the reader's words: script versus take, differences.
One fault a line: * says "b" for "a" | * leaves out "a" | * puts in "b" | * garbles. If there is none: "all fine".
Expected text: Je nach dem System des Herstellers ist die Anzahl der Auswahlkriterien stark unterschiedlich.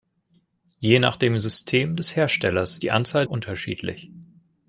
* leaves out "ist"
* leaves out "der Auswahlkriterien stark"